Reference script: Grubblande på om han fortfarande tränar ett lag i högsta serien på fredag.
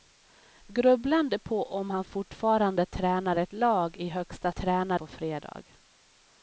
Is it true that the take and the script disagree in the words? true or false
true